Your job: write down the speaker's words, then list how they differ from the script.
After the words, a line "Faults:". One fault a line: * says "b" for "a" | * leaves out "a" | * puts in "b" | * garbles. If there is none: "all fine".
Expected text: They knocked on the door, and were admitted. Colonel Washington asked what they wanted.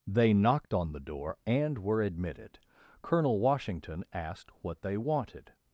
They knocked on the door, and were admitted. Colonel Washington asked what they wanted.
Faults:
all fine